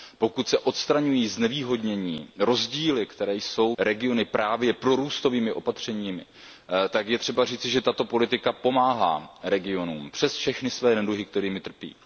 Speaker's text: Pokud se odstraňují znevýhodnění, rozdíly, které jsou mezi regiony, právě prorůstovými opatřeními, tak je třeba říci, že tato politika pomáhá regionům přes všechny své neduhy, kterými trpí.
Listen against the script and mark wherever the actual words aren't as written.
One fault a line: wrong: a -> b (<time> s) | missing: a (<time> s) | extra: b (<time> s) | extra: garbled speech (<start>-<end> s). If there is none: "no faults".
missing: mezi (3.8 s)